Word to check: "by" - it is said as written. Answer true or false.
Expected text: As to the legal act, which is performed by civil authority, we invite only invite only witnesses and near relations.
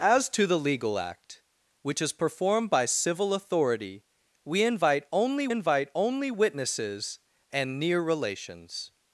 true